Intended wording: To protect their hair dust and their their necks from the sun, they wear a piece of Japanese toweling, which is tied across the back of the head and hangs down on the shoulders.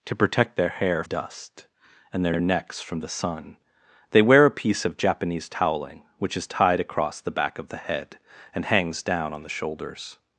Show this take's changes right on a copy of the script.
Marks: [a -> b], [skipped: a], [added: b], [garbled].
To protect their hair dust and their their necks from the sun, they wear a piece of Japanese toweling, which is tied across the back of the head and hangs down on the shoulders.